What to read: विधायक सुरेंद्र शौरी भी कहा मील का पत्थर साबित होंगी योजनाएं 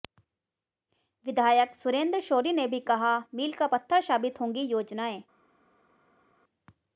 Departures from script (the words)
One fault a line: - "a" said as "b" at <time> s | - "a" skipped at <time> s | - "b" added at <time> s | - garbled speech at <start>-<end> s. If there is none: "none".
- "ने" added at 2.5 s